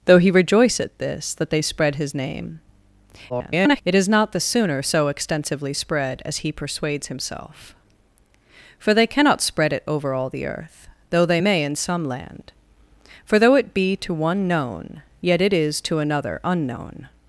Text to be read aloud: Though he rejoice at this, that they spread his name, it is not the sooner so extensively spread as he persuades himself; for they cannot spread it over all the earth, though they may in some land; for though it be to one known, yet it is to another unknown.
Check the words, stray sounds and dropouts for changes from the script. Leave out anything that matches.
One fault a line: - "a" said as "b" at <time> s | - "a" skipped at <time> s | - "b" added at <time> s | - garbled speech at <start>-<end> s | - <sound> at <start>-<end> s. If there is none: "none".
- garbled speech at 3.3-3.8 s